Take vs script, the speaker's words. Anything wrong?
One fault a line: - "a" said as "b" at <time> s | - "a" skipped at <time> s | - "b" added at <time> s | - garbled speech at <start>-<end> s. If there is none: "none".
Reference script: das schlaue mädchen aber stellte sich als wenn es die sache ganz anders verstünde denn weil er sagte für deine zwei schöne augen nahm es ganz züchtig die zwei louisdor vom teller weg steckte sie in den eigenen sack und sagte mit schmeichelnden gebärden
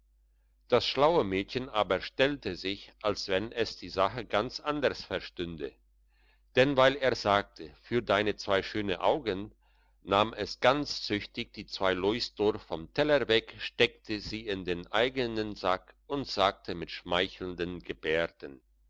none